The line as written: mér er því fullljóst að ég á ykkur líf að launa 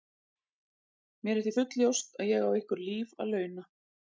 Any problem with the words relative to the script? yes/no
no